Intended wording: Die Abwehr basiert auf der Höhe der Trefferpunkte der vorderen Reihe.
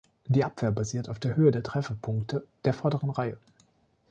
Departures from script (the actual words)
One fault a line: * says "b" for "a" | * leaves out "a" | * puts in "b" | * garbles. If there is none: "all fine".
all fine